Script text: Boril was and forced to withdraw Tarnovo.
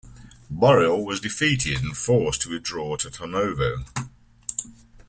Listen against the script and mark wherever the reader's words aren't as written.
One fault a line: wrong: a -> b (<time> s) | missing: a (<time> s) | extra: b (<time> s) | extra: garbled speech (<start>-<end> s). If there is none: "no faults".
extra: defeated (1.2 s)
extra: to (3.0 s)